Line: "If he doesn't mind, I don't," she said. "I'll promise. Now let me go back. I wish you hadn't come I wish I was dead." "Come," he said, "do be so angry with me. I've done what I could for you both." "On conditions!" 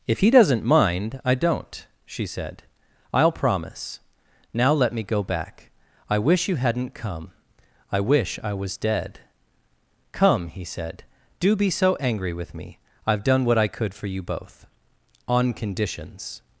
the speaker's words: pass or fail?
pass